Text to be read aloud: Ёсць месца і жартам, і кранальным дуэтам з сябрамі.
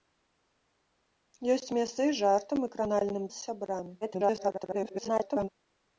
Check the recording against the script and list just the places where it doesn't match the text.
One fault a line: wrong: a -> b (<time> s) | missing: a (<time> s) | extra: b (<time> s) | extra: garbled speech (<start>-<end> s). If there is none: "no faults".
missing: дуэтам (3.2 s)
extra: garbled speech (4.0-5.5 s)